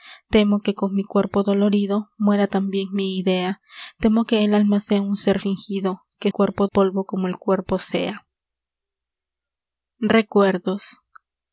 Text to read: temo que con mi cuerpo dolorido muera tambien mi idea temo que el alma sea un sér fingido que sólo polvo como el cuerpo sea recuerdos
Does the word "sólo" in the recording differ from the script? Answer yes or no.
yes